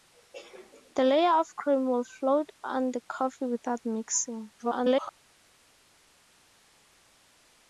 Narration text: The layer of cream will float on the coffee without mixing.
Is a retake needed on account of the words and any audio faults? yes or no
yes